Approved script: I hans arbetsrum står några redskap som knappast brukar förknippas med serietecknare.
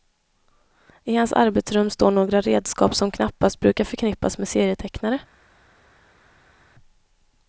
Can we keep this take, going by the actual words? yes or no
yes